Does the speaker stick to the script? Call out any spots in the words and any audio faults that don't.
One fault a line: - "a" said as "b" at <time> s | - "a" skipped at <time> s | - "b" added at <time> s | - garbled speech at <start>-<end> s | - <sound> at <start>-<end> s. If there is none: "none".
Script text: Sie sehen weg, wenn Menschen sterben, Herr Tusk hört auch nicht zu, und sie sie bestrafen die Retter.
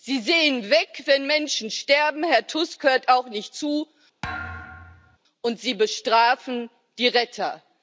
- thud at 4.2-5.2 s
- "sie" skipped at 5.7 s